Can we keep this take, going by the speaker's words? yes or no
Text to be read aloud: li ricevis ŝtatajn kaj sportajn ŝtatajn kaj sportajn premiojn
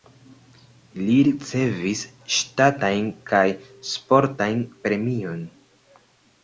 no